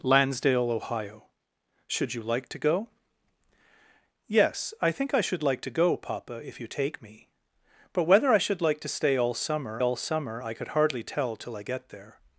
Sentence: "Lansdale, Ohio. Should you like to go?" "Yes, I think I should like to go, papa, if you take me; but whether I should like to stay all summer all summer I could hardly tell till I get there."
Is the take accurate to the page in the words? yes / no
yes